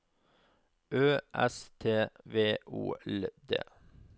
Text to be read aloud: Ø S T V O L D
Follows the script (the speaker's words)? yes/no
yes